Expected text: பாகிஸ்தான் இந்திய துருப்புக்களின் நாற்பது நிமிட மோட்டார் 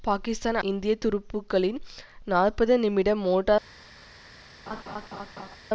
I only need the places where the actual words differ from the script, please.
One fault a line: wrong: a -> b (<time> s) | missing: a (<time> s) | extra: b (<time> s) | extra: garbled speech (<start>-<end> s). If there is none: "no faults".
no faults